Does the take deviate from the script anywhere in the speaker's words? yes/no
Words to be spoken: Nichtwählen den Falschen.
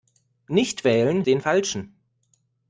no